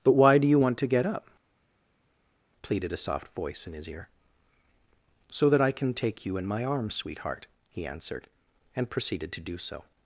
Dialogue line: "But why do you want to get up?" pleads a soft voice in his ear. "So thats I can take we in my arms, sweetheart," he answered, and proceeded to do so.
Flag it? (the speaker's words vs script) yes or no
yes